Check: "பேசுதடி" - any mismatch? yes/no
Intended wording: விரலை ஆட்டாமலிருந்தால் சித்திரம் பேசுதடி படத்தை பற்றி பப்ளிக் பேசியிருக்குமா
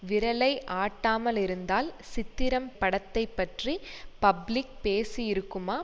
yes